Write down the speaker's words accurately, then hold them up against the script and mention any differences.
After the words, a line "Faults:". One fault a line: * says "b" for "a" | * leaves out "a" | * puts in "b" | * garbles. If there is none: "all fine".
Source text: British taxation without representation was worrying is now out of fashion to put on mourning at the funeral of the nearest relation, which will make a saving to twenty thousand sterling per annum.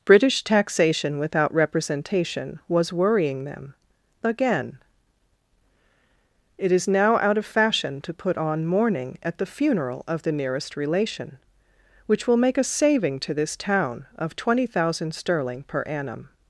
British taxation without representation was worrying them. Again: "It is now out of fashion to put on mourning at the funeral of the nearest relation, which will make a saving to this town of twenty thousand sterling per annum.
Faults:
* puts in "them Again It"
* puts in "this town of"